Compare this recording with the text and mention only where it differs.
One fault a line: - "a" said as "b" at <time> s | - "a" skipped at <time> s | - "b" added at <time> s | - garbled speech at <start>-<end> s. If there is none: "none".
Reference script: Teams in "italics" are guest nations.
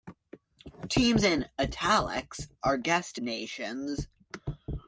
none